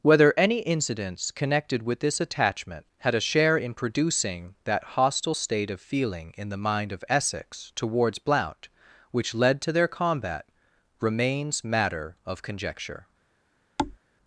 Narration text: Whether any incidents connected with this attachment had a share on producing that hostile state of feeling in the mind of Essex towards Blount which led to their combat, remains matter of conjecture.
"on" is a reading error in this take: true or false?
true